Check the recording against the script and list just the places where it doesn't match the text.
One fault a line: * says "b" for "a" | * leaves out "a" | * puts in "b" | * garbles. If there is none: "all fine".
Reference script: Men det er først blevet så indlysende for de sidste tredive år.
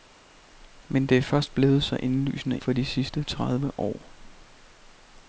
all fine